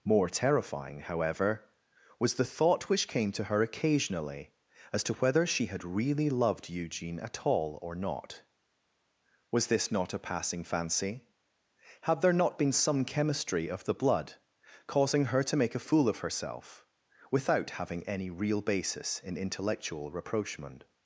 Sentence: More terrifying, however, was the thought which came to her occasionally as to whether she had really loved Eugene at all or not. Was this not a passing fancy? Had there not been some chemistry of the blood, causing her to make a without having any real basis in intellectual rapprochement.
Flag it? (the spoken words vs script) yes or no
yes